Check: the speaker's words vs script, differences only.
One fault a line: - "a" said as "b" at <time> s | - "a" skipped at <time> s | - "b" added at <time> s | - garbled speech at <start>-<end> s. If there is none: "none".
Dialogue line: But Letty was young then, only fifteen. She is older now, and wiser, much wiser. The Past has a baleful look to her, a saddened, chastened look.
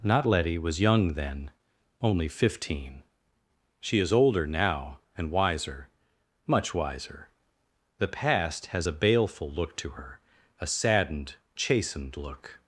- "But" said as "Not" at 0.0 s